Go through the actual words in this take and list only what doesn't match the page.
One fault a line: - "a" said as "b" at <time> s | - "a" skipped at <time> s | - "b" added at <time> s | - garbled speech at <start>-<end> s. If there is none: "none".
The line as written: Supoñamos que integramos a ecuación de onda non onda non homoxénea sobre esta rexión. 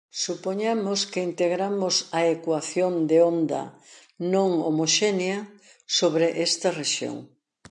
- "onda non" skipped at 4.5 s